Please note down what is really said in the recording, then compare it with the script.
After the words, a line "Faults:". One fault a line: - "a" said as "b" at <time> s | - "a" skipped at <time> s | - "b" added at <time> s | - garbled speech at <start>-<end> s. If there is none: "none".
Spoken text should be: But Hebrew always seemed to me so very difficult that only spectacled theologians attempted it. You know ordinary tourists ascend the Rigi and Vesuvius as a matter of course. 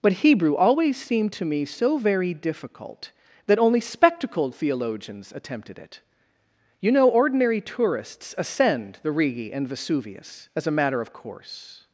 But Hebrew always seemed to me so very difficult that only spectacled theologians attempted it. You know ordinary tourists ascend the Rigi and Vesuvius as a matter of course.
Faults:
none